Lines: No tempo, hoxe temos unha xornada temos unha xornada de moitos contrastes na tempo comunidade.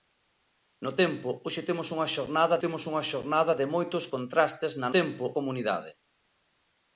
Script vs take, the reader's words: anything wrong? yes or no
no